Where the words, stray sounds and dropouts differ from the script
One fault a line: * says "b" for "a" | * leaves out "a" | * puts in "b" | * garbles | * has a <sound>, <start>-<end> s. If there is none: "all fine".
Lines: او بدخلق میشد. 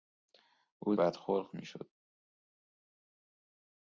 all fine